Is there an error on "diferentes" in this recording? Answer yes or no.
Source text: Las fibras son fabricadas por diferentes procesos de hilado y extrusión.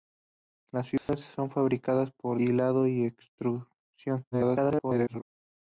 yes